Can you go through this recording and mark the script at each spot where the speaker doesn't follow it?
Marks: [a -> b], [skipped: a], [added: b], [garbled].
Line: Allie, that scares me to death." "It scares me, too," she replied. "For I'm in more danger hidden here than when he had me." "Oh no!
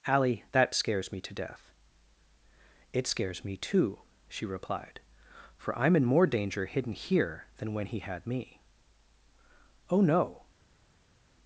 Allie, that scares me to death." "It scares me, too," she replied. "For I'm in more danger hidden here than when he had me." "Oh no!